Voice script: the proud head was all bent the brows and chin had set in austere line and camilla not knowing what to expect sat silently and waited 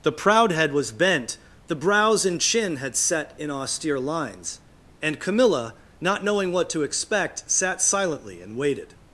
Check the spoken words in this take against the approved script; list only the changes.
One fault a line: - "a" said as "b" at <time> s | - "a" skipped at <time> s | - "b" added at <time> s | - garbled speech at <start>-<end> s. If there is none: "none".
- "all" skipped at 0.9 s
- "line" said as "lines" at 4.0 s